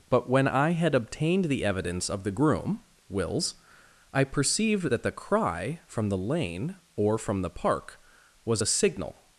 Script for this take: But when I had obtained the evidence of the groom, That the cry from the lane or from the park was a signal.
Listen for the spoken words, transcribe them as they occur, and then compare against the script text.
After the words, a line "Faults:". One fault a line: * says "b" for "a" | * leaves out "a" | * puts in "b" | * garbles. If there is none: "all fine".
But when I had obtained the evidence of the groom, Wills, I perceived that the cry from the lane or from the park was a signal.
Faults:
* puts in "Wills I perceived"